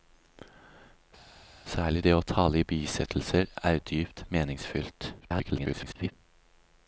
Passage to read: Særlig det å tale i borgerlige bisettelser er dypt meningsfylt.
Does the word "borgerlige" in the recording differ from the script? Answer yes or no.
yes